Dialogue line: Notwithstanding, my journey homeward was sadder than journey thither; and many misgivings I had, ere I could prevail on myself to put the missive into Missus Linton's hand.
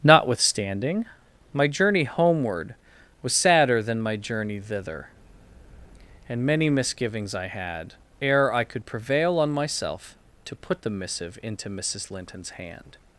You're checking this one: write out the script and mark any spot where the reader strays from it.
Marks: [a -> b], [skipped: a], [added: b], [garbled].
Notwithstanding, my journey homeward was sadder than [added: my] journey thither; and many misgivings I had, ere I could prevail on myself to put the missive into Missus Linton's hand.